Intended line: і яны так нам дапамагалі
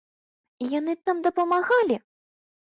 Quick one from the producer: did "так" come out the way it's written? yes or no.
no